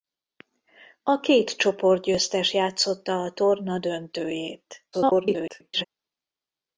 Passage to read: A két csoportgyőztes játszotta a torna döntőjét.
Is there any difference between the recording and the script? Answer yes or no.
yes